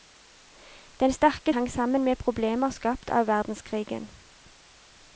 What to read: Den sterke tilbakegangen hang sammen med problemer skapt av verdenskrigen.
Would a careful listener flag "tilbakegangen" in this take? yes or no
yes